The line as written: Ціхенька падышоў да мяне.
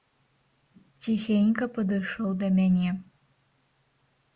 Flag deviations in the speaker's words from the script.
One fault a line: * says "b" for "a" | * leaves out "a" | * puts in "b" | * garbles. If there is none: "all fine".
all fine